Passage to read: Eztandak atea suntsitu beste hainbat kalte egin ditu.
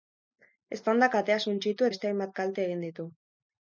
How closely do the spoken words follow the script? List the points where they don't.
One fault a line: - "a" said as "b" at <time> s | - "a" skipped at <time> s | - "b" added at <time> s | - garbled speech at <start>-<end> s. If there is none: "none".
none